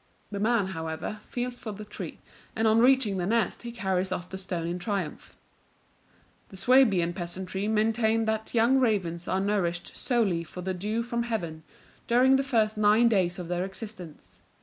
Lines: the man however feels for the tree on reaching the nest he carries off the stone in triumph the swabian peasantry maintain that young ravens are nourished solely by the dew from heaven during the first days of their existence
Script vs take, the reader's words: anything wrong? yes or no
yes